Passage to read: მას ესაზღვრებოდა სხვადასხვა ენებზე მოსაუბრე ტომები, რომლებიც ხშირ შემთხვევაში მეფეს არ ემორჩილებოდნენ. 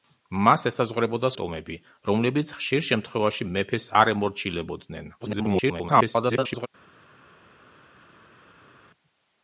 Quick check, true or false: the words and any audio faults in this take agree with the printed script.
false